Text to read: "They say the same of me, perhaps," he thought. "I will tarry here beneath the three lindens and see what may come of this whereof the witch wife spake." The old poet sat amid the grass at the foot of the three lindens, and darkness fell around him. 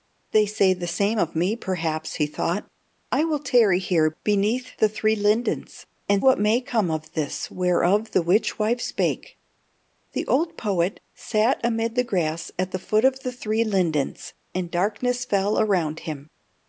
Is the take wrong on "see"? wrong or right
wrong